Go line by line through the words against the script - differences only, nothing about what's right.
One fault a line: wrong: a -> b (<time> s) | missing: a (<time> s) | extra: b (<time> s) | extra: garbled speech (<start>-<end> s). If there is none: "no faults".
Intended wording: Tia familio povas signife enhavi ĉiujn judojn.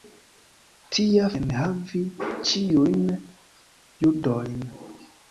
missing: familio povas signife (1.3 s)